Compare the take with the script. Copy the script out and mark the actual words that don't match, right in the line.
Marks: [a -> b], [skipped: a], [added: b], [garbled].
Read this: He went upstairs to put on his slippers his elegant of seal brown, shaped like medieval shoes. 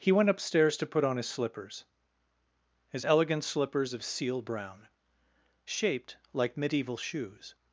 He went upstairs to put on his slippers his elegant [added: slippers] of seal brown, shaped like medieval shoes.